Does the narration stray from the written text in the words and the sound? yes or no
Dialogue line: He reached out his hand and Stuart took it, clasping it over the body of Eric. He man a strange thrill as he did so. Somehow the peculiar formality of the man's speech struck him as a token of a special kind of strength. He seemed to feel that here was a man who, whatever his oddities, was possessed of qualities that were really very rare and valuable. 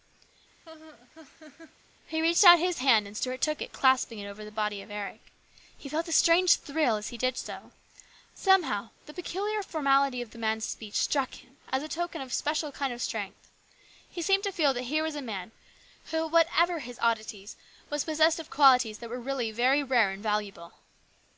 yes